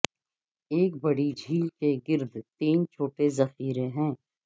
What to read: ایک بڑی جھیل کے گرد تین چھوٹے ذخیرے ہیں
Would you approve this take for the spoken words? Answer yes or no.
yes